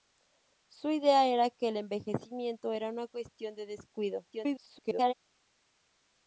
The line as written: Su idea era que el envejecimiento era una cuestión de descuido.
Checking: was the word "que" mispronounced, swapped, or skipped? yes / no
no